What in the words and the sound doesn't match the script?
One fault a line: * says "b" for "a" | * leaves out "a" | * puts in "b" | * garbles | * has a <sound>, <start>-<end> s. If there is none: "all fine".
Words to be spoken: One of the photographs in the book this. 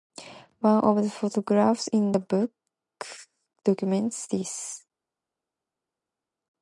* puts in "documents"